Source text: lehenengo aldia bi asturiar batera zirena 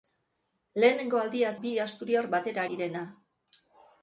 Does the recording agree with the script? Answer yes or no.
yes